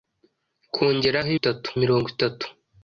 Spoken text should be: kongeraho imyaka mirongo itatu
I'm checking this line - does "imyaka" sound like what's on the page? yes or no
no